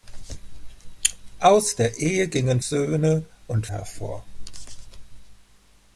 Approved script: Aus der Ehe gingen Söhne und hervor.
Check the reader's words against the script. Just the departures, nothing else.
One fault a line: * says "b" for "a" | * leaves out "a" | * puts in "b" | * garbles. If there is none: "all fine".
all fine